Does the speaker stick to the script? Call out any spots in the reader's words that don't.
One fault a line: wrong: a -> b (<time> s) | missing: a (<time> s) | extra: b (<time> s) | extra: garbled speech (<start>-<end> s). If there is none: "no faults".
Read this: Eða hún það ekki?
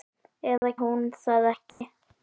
no faults